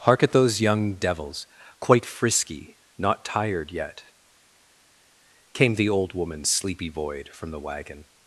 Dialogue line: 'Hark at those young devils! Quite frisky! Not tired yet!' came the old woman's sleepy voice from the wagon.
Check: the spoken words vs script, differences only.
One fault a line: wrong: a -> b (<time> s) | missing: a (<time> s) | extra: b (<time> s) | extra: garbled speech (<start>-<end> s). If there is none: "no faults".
wrong: voice -> void (6.9 s)